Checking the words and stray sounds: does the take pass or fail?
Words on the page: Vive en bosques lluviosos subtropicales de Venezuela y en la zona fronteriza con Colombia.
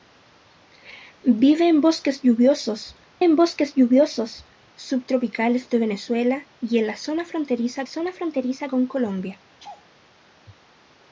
fail